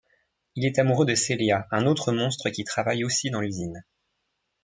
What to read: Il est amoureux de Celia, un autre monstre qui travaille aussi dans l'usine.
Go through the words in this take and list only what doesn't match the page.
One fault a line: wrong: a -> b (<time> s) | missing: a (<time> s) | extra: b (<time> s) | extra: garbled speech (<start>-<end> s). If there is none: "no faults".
no faults